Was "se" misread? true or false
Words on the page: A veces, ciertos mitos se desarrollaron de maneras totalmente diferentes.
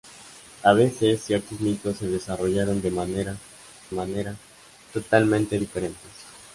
false